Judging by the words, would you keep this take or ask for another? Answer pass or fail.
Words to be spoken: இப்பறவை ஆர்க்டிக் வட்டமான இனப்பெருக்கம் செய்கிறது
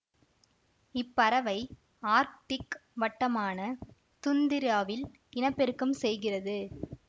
fail